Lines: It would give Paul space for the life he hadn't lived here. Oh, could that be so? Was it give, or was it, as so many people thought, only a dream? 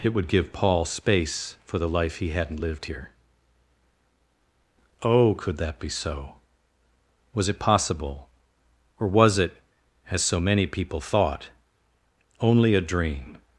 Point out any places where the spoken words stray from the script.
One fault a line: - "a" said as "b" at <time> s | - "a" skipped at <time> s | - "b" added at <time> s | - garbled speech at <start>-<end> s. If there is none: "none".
- "give" said as "possible" at 7.6 s